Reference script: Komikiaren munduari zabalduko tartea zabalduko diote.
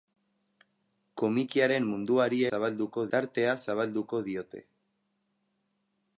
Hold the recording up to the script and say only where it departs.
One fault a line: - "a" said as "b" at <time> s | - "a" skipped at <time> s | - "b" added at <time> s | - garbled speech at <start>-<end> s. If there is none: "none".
none